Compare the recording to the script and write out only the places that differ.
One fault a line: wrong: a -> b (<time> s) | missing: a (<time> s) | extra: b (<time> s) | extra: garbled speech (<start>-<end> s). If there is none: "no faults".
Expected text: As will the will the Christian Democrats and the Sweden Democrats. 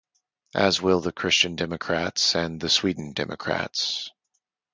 missing: will the (1.1 s)